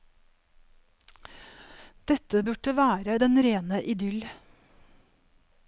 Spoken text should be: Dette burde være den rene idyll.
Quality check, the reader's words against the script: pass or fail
pass